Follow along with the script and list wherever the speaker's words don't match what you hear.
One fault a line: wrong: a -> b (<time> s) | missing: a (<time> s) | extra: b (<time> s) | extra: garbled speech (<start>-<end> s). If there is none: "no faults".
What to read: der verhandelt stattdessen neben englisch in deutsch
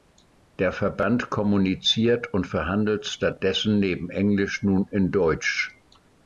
extra: verband kommuniziert und (0.7 s)
extra: nun (4.6 s)